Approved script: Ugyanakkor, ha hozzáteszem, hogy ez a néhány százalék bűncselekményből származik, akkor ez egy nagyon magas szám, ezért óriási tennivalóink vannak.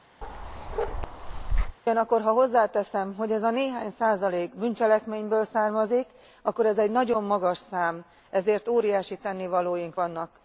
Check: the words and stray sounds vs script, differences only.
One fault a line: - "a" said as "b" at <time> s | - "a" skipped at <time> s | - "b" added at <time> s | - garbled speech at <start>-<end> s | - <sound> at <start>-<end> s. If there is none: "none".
- bark at 0.2-1.8 s